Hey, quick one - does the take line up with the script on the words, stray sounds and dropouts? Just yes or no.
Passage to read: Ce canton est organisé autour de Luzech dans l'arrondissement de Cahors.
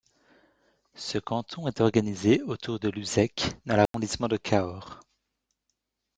no